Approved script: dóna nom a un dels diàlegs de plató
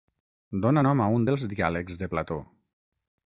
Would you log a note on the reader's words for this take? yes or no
no